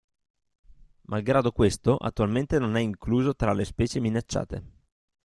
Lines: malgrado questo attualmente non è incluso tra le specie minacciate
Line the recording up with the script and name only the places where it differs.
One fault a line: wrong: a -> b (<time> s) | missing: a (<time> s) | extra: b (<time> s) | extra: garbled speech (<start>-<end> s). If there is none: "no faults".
no faults